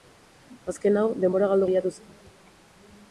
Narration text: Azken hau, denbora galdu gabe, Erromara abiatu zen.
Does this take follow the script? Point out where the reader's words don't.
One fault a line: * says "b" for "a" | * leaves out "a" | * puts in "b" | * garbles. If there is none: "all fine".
* leaves out "gabe Erromara"